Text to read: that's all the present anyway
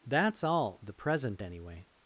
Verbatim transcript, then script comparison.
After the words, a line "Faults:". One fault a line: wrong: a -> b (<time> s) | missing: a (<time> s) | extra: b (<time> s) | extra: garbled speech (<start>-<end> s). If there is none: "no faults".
that's all the present anyway
Faults:
no faults